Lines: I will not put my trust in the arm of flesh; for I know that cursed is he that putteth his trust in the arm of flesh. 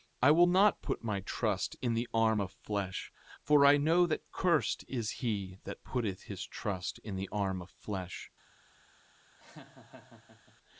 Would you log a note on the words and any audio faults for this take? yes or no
yes